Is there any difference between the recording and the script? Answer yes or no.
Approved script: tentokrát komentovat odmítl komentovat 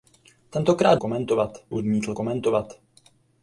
no